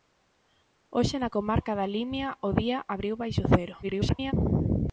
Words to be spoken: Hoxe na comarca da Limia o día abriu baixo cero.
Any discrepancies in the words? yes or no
yes